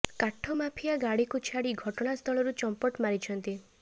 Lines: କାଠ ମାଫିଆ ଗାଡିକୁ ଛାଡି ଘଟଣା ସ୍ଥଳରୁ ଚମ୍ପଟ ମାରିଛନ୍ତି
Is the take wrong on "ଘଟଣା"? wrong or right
right